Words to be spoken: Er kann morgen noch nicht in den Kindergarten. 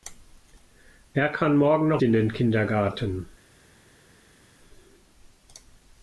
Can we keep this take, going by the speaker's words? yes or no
no